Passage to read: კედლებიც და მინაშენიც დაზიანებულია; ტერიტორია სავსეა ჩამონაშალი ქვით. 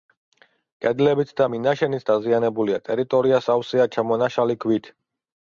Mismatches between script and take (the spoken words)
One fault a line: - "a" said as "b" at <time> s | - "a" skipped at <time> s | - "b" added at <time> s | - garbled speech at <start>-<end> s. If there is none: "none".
none